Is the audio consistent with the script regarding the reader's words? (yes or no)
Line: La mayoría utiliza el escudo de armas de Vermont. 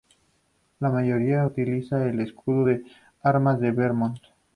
yes